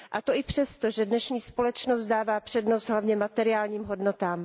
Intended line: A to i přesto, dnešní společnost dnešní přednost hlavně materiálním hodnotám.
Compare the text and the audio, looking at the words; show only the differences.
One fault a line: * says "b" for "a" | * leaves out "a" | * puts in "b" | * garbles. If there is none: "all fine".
* puts in "že"
* says "dává" for "dnešní"